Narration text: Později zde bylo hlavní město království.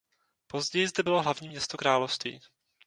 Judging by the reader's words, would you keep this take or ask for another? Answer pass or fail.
pass